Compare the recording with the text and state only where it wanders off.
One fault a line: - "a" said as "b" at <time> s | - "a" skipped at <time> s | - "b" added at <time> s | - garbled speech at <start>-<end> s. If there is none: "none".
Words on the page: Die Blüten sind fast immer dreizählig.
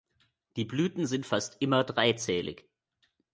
none